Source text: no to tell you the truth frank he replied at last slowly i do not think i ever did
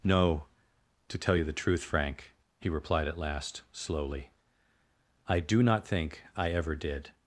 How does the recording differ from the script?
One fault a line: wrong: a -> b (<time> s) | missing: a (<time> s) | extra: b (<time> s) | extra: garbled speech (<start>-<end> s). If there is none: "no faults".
no faults